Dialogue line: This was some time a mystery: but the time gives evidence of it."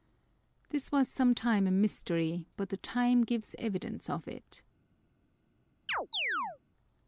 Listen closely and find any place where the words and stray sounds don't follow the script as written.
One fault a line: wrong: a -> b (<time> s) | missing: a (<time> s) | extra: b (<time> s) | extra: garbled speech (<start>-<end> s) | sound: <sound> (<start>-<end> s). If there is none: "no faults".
sound: chirp (5.9-6.6 s)